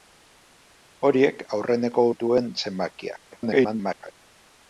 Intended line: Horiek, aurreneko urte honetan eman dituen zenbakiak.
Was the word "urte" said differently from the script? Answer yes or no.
yes